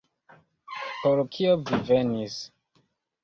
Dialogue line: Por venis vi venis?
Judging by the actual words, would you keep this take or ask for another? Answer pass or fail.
fail